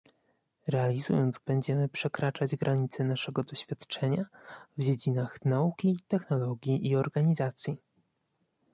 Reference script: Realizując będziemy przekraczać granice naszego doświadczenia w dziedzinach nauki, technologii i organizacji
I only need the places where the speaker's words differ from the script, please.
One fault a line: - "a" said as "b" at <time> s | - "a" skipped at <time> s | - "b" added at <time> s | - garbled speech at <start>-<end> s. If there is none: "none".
none